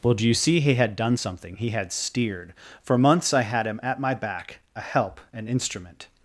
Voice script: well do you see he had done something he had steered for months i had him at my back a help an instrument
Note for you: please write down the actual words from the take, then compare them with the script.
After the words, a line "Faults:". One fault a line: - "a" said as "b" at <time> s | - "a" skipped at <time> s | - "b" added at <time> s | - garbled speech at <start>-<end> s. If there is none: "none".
well do you see he had done something he had steered for months i had him at my back a help an instrument
Faults:
none